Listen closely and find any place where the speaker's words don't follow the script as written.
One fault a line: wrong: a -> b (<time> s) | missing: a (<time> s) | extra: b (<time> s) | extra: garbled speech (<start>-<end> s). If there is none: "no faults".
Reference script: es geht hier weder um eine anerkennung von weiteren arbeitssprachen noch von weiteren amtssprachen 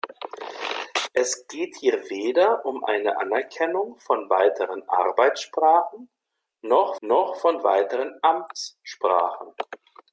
extra: noch (7.0 s)